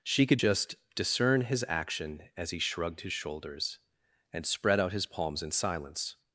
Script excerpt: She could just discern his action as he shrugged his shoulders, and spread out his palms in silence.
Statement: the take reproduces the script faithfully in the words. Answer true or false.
true